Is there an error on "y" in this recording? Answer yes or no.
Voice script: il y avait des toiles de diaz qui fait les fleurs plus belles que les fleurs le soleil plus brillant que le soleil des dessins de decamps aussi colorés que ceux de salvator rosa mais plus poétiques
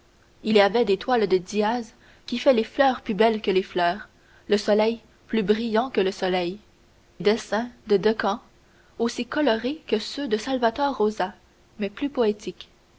no